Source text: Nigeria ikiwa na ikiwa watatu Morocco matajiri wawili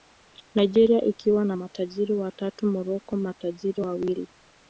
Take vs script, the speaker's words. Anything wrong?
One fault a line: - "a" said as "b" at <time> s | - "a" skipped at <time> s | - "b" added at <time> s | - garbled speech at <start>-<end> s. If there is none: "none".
- "ikiwa" said as "matajiri" at 1.5 s